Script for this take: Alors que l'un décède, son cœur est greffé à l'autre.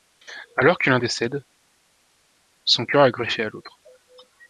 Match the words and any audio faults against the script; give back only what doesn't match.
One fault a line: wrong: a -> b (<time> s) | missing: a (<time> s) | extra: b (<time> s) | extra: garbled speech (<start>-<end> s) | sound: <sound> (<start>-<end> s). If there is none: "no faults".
no faults